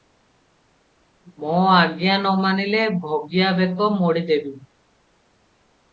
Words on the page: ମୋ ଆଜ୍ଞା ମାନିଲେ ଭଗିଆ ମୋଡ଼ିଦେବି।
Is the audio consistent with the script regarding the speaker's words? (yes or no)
no